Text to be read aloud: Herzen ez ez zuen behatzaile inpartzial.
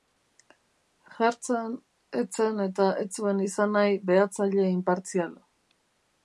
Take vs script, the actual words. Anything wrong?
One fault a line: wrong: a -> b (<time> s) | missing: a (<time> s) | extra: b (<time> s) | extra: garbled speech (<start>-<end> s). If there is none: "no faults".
extra: zen eta (2.4 s)
extra: izan nahi (3.5 s)